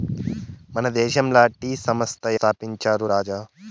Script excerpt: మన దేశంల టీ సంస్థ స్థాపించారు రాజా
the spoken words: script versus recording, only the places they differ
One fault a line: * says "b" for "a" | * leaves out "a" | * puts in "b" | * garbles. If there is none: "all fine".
all fine